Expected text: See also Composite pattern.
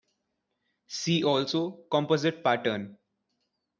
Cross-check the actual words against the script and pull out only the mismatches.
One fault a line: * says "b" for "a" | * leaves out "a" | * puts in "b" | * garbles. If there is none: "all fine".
all fine